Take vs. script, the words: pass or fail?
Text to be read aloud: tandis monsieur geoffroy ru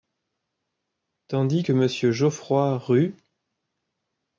fail